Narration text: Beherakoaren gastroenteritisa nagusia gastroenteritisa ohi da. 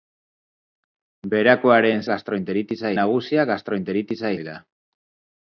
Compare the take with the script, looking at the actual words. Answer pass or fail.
pass